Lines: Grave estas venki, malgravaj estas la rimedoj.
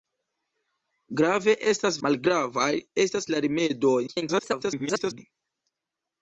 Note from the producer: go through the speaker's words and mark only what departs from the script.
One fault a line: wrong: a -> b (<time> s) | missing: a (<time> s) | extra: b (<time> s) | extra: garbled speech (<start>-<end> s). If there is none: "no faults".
missing: venki (2.0 s)
extra: garbled speech (4.1-5.2 s)